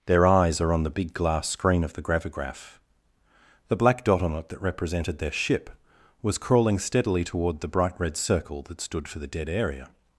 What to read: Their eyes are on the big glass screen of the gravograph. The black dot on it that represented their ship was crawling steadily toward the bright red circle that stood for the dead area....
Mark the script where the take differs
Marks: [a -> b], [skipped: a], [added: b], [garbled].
Their eyes are on the big glass screen of the gravograph. The black dot on it that represented their ship was crawling steadily toward the bright red circle that stood for the dead area....